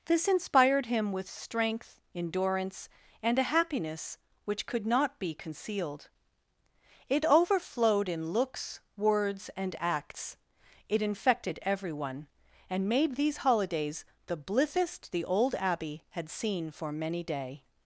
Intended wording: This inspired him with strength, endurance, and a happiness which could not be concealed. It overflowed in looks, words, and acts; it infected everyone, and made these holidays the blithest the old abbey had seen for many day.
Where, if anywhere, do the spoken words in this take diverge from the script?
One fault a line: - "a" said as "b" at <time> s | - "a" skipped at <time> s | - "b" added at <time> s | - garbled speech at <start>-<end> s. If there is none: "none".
none